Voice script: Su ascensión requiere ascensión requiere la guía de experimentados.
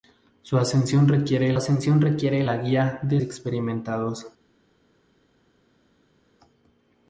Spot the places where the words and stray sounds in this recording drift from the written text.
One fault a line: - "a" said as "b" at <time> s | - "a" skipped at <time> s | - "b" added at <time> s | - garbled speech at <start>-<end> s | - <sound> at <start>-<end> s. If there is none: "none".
none